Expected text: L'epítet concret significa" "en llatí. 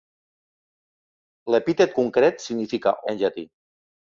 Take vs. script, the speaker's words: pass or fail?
pass